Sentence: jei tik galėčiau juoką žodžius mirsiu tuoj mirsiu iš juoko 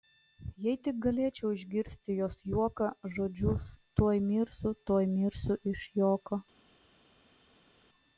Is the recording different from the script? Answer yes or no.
yes